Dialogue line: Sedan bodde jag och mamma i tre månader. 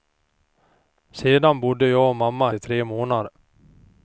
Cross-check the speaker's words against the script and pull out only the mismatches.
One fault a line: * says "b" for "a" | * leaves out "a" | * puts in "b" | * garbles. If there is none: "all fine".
all fine